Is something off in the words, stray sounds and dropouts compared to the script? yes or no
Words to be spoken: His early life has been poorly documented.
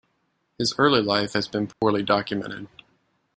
yes